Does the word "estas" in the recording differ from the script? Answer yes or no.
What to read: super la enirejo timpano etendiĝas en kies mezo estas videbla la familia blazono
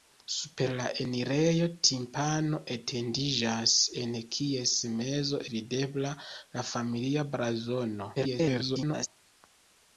yes